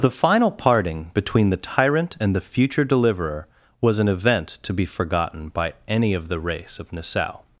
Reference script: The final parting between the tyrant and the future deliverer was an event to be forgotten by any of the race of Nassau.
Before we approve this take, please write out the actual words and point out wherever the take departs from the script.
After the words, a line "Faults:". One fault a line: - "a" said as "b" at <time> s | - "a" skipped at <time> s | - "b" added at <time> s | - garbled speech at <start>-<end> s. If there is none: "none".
The final parting between the tyrant and the future deliverer was an event to be forgotten by any of the race of Nassau.
Faults:
none